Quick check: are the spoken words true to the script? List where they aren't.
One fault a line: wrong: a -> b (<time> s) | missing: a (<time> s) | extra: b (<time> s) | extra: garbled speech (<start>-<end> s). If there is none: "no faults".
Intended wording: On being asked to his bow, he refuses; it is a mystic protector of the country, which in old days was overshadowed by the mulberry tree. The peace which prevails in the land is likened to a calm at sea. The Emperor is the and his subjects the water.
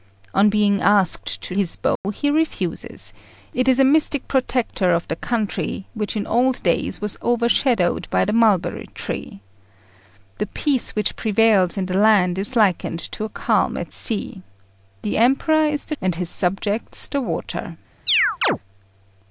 no faults